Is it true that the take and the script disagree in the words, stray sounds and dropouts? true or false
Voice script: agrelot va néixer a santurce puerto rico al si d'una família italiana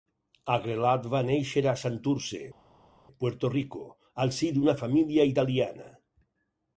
false